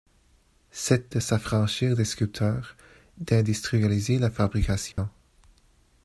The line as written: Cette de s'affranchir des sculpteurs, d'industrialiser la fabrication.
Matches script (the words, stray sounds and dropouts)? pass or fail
fail